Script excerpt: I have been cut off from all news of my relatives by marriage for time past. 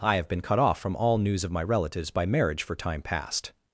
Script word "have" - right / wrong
right